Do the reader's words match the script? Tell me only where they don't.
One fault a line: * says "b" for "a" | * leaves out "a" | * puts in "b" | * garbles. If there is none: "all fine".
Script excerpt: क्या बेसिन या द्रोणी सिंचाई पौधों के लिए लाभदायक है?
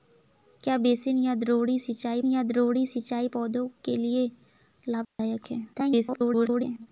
* puts in "या द्रोणी सिंचाई"
* garbles